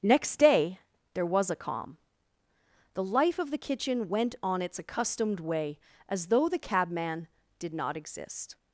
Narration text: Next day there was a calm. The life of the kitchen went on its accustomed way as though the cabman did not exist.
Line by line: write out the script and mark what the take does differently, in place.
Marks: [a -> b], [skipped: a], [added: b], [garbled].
Next day there was a calm. The life of the kitchen went on its accustomed way as though the cabman did not exist.